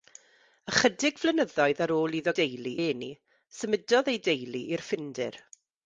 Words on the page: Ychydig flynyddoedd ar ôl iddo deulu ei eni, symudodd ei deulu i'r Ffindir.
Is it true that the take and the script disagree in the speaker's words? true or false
false